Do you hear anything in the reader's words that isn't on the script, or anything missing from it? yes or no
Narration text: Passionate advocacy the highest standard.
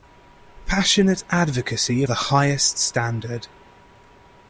no